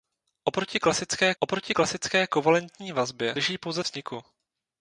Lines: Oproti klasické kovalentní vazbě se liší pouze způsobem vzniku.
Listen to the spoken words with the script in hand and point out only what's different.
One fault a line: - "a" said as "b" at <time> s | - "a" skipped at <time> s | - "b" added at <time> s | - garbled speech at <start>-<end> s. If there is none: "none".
- "oproti klasické" added at 1.4 s
- "se" skipped at 3.4 s
- "způsobem" skipped at 3.8 s